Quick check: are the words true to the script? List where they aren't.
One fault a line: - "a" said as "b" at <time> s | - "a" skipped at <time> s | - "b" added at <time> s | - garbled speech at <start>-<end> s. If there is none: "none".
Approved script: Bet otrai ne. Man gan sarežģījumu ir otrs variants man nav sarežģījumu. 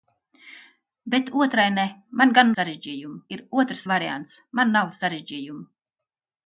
none